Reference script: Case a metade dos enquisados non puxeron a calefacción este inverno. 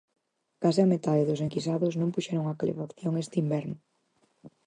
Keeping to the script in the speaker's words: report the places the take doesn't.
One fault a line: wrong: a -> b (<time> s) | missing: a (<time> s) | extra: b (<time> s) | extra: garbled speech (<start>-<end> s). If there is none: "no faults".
no faults